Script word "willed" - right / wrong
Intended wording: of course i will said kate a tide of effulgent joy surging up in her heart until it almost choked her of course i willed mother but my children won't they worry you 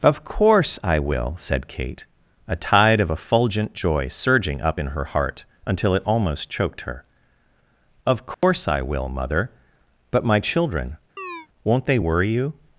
wrong